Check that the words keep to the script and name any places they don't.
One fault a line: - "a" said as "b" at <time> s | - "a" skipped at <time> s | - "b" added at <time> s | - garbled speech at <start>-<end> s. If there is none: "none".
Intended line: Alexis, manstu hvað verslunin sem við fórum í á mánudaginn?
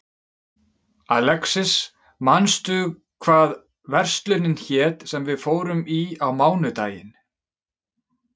- "hét" added at 4.6 s